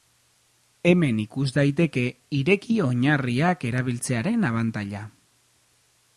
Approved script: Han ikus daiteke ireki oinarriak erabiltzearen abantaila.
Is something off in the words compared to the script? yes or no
yes